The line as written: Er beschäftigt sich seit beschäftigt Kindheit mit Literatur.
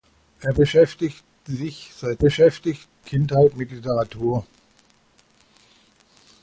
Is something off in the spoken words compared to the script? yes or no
no